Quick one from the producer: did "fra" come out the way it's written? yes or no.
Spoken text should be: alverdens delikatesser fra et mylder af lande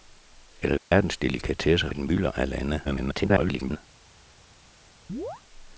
no